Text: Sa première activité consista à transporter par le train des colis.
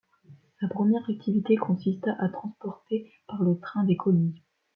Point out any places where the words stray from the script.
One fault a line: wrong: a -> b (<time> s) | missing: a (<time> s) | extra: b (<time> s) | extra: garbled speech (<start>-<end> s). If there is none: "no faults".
no faults